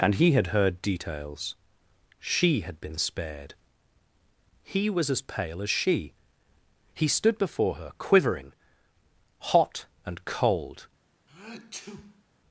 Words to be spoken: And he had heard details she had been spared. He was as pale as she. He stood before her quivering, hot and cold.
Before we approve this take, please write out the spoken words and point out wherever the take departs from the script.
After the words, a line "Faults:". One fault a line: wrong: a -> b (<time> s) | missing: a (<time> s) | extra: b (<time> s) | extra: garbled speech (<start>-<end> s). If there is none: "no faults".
And he had heard details she had been spared. He was as pale as she. He stood before her quivering, hot and cold.
Faults:
no faults